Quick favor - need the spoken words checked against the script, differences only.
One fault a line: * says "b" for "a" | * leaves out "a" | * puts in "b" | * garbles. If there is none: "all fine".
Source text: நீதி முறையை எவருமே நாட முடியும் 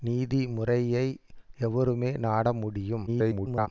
* garbles